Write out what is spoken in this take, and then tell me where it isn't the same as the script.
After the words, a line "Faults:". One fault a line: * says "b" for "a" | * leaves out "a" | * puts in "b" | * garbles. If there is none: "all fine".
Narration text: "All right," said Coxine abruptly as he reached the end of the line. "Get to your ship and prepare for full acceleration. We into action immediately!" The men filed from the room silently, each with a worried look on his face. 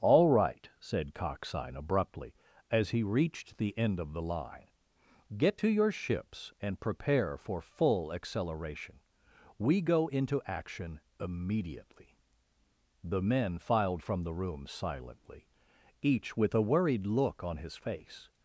"All right," said Coxine abruptly as he reached the end of the line. "Get to your ships and prepare for full acceleration. We go into action immediately!" The men filed from the room silently, each with a worried look on his face.
Faults:
* says "ships" for "ship"
* puts in "go"